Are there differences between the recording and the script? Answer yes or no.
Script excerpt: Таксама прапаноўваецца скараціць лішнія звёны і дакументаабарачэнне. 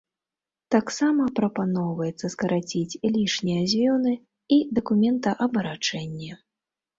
no